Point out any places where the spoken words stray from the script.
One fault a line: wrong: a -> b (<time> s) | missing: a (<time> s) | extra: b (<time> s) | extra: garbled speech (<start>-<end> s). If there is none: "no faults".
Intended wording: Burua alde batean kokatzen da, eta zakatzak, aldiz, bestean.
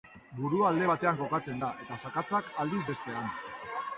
no faults